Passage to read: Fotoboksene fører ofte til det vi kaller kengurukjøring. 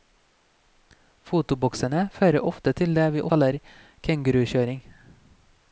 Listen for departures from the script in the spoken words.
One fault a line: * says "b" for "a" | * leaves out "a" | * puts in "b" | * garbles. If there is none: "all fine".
all fine